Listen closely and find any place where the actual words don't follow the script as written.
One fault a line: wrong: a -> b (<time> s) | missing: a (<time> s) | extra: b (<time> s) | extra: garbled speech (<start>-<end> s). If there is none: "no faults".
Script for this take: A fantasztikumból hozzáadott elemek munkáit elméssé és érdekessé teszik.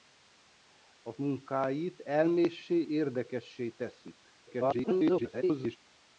missing: fantasztikumból hozzáadott elemek (1.1 s)
missing: és (2.9 s)
extra: garbled speech (4.5-5.8 s)